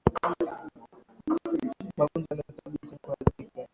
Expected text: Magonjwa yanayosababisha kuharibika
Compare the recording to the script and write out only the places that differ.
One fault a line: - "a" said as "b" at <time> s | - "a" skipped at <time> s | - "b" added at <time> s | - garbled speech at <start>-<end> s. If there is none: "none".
none